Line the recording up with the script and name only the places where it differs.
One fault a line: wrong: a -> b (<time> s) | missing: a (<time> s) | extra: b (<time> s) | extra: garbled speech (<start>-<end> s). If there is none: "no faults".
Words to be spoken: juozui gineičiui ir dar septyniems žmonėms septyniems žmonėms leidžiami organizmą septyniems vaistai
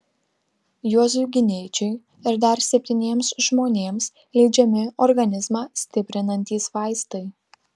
missing: septyniems žmonėms (4.1 s)
wrong: septyniems -> stiprinantys (5.8 s)